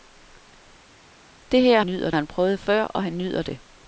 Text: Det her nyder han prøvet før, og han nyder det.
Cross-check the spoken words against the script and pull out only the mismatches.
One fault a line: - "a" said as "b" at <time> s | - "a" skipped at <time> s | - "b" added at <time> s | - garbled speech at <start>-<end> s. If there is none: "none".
none